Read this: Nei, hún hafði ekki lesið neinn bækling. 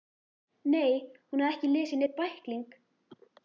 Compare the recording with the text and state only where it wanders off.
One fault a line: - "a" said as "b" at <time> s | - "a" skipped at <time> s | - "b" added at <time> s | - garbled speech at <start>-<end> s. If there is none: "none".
none